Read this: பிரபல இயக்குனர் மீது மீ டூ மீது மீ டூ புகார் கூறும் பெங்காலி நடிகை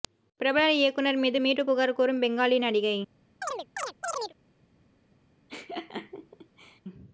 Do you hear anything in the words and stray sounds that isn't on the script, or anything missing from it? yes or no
yes